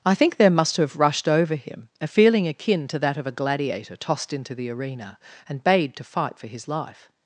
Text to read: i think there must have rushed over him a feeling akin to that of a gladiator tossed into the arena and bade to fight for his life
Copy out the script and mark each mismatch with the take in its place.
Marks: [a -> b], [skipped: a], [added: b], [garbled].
i think there must have rushed over him a feeling akin to that of a gladiator tossed into the arena and bade to fight for his life